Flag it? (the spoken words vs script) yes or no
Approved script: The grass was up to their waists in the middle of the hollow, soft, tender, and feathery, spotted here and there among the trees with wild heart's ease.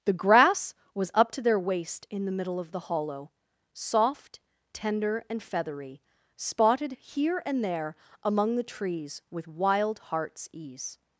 yes